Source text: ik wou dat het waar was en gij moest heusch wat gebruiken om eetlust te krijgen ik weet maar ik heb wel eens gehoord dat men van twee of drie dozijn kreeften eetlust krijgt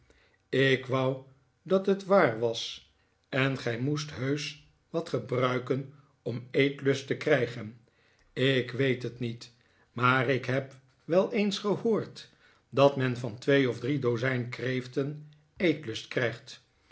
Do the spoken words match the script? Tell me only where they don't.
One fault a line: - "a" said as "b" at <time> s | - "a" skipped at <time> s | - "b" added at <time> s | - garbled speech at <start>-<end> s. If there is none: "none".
- "het niet" added at 9.0 s